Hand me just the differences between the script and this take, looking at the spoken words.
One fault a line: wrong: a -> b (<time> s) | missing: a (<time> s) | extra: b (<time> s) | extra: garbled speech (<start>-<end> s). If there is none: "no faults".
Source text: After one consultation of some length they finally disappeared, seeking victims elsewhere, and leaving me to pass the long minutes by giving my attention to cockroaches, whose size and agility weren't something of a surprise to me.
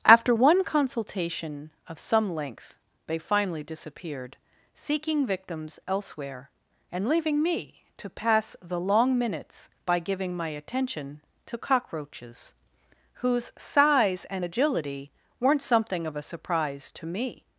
no faults